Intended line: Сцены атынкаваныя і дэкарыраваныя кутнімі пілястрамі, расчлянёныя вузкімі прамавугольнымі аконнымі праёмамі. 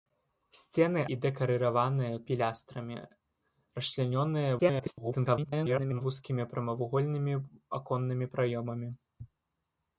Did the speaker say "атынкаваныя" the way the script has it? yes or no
no